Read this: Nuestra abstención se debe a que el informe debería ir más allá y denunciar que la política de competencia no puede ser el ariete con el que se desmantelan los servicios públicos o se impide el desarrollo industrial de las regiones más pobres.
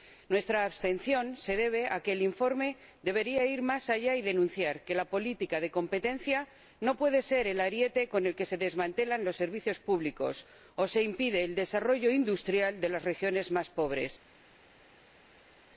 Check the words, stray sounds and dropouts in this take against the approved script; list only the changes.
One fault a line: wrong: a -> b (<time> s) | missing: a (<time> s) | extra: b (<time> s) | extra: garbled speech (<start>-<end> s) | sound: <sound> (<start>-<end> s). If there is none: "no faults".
no faults